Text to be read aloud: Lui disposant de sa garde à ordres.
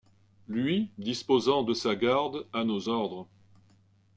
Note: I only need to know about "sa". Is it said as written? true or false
true